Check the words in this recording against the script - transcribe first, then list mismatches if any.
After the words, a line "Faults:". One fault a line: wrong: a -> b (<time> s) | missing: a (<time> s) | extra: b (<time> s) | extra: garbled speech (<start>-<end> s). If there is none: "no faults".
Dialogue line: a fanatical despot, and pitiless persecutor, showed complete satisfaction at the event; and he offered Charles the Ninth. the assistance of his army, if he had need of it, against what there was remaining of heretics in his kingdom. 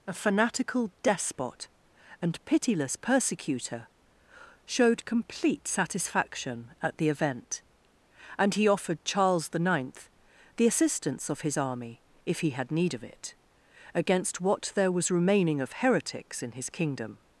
a fanatical despot, and pitiless persecutor, showed complete satisfaction at the event; and he offered Charles the Ninth. the assistance of his army, if he had need of it, against what there was remaining of heretics in his kingdom.
Faults:
no faults